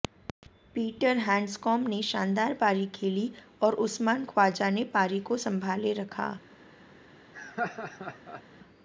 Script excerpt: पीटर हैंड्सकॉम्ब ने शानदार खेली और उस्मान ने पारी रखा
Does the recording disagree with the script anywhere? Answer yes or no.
yes